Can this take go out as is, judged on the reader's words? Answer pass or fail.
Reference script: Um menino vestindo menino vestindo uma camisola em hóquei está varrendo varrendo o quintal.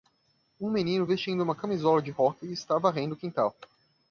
fail